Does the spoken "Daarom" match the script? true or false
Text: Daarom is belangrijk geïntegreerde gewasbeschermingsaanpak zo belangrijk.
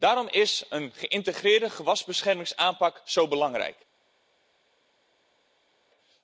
true